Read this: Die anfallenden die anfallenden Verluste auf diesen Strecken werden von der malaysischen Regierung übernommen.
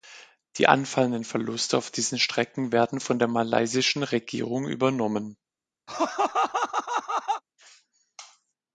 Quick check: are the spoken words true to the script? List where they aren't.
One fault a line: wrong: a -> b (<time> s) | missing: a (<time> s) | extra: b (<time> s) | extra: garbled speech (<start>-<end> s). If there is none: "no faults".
missing: die anfallenden (1.2 s)